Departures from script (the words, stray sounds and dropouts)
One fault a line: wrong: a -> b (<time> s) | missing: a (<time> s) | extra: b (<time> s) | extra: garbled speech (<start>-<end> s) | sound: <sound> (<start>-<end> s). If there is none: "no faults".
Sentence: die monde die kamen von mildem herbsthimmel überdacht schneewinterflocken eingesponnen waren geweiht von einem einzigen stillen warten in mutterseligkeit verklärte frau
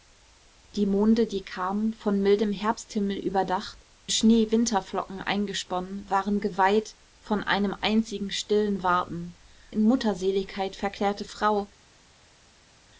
no faults